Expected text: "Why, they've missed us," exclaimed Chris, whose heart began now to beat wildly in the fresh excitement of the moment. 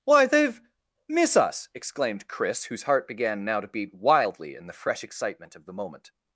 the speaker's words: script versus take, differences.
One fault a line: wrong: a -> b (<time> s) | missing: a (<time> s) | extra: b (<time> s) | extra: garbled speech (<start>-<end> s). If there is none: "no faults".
wrong: missed -> miss (1.1 s)